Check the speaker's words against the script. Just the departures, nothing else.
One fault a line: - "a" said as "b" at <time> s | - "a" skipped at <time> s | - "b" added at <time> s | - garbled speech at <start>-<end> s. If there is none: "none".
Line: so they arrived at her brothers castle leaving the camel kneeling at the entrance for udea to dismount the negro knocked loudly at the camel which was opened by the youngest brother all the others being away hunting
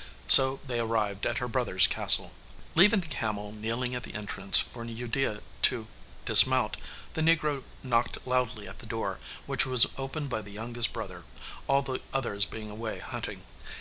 - "camel" said as "door" at 8.9 s